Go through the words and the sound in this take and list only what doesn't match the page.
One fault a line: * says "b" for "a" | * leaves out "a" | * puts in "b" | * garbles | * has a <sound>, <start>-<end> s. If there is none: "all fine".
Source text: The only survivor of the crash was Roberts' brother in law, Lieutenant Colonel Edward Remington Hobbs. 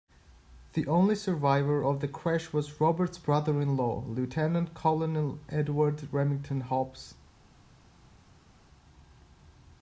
all fine